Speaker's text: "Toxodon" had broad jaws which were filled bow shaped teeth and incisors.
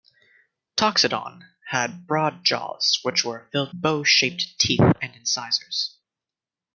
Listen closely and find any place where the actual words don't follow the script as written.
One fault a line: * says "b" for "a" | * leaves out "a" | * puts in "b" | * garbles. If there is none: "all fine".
all fine